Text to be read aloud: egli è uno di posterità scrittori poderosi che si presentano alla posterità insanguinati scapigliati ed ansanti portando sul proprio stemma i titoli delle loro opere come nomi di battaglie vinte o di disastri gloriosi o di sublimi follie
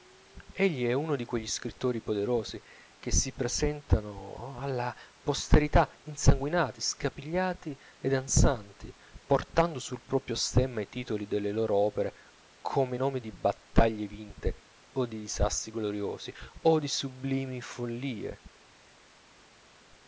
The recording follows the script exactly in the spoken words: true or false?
false